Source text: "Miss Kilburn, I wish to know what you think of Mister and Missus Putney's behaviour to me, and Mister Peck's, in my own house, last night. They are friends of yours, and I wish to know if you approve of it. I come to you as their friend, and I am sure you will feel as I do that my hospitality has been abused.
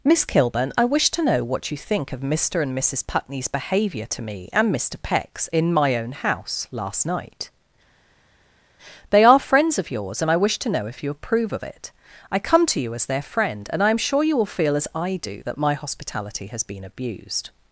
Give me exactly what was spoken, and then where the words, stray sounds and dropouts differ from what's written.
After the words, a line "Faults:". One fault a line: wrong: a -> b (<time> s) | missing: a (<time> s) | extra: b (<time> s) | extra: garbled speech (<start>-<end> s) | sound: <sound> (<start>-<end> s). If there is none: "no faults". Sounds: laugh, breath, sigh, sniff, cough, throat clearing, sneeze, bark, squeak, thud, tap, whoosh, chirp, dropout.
"Miss Kilburn, I wish to know what you think of Mister and Missus Putney's behaviour to me, and Mister Peck's, in my own house, last night. They are friends of yours, and I wish to know if you approve of it. I come to you as their friend, and I am sure you will feel as I do that my hospitality has been abused.
Faults:
no faults